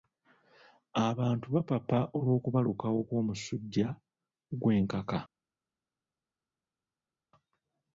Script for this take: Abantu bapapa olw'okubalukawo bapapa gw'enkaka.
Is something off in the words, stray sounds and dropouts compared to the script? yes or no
yes